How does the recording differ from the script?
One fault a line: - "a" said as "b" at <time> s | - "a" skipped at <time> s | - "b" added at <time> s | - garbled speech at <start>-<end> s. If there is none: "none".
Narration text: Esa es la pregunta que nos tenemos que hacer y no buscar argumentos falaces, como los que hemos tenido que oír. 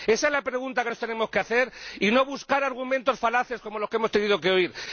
none